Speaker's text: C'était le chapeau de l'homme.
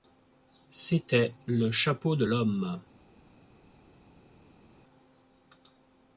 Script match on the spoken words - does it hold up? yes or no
yes